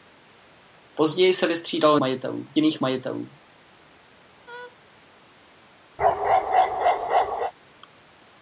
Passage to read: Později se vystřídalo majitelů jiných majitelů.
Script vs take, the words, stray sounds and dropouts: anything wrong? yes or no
yes